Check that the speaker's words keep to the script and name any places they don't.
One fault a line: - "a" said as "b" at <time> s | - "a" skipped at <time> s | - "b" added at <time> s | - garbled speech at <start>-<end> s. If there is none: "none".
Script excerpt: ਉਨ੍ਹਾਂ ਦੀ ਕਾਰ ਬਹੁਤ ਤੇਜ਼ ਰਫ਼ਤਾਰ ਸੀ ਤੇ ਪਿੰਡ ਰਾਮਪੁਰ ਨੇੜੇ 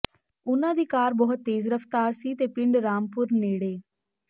none